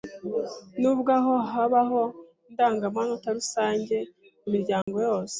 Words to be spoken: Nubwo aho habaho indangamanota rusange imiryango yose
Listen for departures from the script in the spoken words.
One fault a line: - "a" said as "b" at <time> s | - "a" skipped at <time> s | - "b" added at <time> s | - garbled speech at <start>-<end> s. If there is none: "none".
none